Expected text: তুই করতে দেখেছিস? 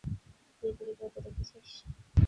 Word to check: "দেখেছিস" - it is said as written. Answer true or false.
true